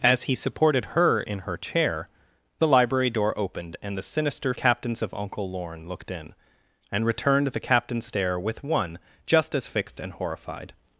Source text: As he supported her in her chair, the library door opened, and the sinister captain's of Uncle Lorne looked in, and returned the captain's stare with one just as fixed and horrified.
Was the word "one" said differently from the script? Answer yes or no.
no